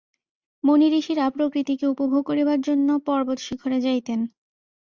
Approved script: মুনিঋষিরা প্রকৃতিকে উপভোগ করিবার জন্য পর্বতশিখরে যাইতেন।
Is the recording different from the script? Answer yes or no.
no